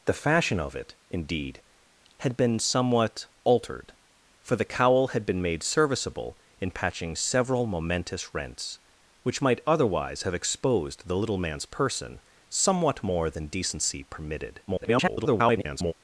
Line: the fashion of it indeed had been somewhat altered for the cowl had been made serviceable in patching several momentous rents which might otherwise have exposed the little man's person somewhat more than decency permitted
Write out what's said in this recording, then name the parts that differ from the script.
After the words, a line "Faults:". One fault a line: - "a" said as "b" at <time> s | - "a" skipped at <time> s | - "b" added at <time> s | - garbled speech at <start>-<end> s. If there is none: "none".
the fashion of it indeed had been somewhat altered for the cowl had been made serviceable in patching several momentous rents which might otherwise have exposed the little man's person somewhat more than decency permitted [garbled]
Faults:
- garbled speech at 14.7-15.9 s